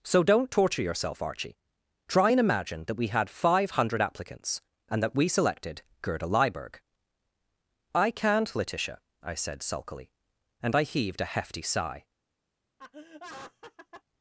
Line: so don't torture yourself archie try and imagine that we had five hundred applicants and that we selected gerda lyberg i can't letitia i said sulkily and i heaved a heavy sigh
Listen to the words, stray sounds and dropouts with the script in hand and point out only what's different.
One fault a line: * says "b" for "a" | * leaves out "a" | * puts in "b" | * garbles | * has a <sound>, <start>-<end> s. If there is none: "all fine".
* says "hefty" for "heavy"
* has a laugh, 12.8-14.0 s